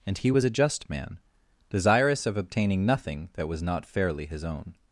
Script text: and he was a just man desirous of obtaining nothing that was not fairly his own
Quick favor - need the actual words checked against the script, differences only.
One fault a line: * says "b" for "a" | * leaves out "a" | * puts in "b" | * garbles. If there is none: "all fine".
all fine